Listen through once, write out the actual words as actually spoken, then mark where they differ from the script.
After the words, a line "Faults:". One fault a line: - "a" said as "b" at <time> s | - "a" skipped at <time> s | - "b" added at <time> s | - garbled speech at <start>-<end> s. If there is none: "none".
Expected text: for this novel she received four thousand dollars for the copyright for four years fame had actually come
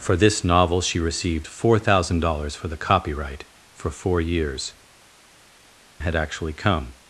for this novel she received four thousand dollars for the copyright for four years had actually come
Faults:
- "fame" skipped at 4.7 s